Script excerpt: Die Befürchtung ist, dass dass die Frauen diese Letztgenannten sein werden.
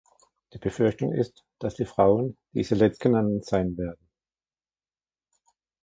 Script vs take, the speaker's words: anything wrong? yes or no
yes